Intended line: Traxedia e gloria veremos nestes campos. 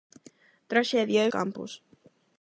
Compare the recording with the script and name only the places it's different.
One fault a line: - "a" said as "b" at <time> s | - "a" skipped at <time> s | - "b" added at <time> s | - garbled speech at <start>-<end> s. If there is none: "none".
- "gloria veremos nestes" skipped at 1.3 s